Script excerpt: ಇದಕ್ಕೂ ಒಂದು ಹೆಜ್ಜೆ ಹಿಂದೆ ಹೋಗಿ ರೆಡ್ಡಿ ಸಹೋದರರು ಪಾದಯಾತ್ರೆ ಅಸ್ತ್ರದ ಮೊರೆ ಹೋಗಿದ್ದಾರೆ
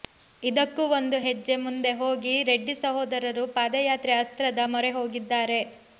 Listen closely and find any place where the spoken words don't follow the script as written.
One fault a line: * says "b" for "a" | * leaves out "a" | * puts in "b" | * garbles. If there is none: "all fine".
* says "ಮುಂದೆ" for "ಹಿಂದೆ"